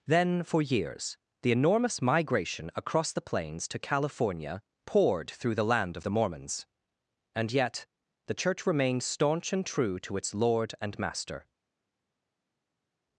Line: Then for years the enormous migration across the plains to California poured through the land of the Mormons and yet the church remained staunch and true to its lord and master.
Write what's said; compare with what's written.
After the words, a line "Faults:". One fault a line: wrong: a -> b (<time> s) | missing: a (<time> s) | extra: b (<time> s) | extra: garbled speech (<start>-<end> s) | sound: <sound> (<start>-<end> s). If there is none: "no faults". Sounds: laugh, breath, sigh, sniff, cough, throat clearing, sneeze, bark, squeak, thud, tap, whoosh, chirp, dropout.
Then for years the enormous migration across the plains to California poured through the land of the Mormons and yet the church remained staunch and true to its lord and master.
Faults:
no faults